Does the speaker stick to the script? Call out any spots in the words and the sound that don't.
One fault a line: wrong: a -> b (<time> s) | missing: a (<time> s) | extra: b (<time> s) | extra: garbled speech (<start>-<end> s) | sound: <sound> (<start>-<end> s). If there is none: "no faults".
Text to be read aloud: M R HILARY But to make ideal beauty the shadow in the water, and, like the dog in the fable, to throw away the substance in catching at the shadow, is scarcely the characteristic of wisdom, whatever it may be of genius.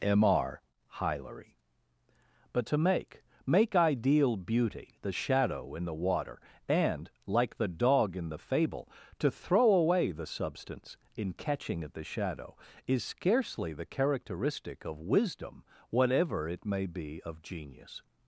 extra: make (3.4 s)